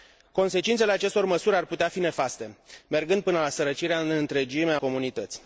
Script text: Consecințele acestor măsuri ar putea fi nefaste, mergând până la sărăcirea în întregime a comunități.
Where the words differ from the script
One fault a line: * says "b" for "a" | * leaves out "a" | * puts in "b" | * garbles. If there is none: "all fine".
all fine